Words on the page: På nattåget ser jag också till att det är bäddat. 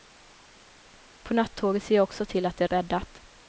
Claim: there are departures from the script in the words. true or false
false